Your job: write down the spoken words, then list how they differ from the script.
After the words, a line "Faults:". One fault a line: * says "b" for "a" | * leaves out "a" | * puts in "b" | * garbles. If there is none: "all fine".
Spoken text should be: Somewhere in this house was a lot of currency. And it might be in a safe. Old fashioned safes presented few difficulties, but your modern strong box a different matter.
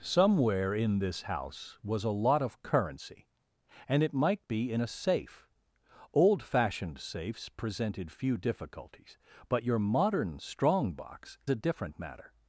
Somewhere in this house was a lot of currency. And it might be in a safe. Old fashioned safes presented few difficulties, but your modern strong box a different matter.
Faults:
all fine